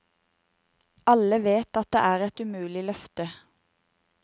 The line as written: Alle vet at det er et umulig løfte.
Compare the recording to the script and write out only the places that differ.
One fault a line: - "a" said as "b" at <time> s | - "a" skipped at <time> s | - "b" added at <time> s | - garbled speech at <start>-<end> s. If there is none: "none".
none